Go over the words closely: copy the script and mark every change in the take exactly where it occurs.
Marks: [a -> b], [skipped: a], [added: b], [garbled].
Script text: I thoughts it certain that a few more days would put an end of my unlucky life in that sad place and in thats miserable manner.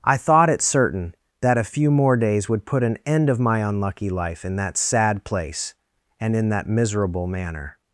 I [thoughts -> thought] it certain that a few more days would put an end of my unlucky life in that sad place and in [thats -> that] miserable manner.